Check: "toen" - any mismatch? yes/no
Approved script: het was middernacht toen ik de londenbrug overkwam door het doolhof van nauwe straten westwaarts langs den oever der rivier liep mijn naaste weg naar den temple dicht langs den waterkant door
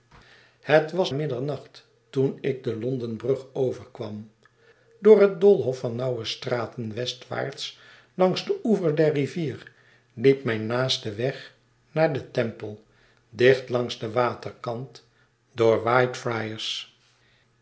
no